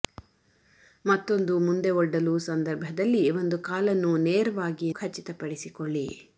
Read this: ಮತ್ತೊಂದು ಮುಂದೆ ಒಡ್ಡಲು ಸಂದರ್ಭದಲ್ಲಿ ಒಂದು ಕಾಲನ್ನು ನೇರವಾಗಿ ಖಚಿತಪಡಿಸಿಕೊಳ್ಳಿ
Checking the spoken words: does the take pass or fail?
pass